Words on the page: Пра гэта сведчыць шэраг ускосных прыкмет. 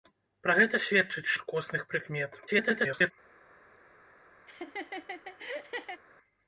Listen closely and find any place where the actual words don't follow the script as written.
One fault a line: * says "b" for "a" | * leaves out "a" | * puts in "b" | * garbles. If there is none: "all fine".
* leaves out "шэраг"
* garbles